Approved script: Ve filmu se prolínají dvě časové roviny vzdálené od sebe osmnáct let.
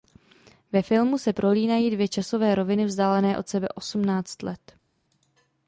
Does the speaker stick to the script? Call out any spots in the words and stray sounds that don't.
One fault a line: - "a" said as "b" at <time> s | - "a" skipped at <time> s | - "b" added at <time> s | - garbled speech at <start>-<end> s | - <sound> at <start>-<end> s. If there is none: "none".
none